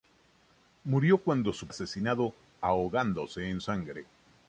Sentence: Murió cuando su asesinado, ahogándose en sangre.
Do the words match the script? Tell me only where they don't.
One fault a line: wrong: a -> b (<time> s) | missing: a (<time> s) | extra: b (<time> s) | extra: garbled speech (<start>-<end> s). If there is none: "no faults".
no faults